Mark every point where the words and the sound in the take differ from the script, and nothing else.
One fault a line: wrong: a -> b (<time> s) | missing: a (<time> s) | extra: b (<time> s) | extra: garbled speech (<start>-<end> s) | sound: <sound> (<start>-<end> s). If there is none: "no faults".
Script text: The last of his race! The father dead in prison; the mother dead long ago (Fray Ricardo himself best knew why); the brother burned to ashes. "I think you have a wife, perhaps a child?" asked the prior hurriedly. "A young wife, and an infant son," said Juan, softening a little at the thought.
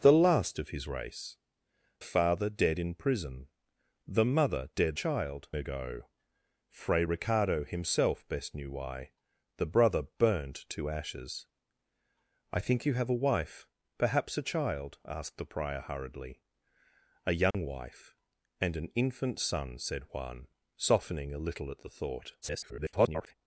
missing: The (1.4 s)
wrong: long -> child (4.9 s)
sound: dropout (17.5-17.5 s)
extra: garbled speech (22.4-23.3 s)